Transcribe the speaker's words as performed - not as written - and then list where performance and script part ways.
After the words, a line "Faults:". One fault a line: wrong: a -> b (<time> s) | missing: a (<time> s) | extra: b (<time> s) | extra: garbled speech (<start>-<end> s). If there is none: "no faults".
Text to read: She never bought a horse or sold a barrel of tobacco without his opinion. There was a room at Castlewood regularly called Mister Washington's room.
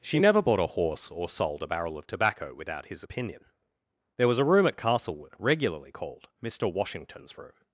She never bought a horse or sold a barrel of tobacco without his opinion. There was a room at Castlewood regularly called Mister Washington's room.
Faults:
no faults